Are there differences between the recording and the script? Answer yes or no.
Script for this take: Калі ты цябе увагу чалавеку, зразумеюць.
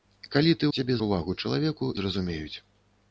no